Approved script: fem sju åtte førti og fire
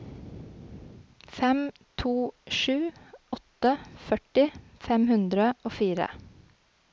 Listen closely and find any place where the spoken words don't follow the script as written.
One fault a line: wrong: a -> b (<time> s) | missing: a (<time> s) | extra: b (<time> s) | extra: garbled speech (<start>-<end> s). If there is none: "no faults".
extra: to (2.0 s)
extra: fem hundre (4.9 s)